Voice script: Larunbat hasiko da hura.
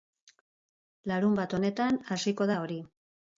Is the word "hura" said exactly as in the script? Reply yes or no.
no